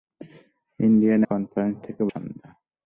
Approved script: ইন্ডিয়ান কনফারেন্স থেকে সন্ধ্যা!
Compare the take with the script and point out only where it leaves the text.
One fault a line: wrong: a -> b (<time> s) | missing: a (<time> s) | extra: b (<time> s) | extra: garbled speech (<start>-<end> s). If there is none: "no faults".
no faults